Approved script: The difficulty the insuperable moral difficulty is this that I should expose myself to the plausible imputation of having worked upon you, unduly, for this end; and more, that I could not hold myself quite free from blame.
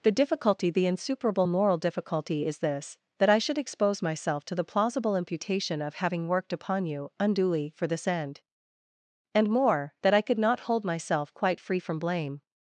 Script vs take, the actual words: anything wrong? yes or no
no